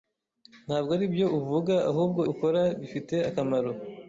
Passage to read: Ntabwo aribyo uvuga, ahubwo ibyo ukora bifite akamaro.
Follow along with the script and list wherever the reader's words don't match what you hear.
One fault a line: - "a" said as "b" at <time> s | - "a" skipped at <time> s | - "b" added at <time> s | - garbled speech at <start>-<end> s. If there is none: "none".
- "ibyo" skipped at 2.2 s